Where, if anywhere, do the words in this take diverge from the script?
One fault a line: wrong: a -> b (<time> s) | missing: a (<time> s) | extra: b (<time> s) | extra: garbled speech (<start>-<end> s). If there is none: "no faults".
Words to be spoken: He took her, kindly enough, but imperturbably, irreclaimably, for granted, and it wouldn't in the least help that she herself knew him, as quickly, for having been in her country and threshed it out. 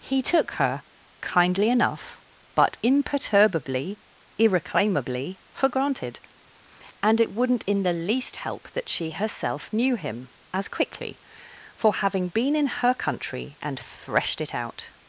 no faults